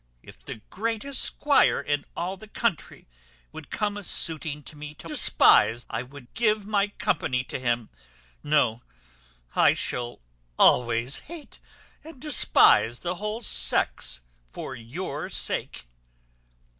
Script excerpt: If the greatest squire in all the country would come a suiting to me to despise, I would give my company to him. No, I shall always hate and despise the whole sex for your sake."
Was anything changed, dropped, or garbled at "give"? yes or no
no